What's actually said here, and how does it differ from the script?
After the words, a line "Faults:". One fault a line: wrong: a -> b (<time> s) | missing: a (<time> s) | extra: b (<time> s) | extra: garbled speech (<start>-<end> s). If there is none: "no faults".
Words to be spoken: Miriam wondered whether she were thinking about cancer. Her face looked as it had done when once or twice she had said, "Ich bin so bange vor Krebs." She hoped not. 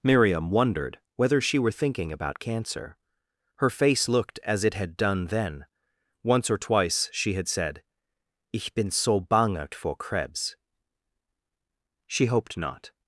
Miriam wondered whether she were thinking about cancer. Her face looked as it had done then once or twice she had said, "Ich bin so bange vor Krebs." She hoped not.
Faults:
wrong: when -> then (5.3 s)